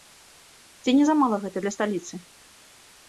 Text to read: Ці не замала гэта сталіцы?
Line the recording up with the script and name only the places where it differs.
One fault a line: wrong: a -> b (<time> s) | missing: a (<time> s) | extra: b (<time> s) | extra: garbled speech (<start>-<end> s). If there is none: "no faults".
extra: для (1.6 s)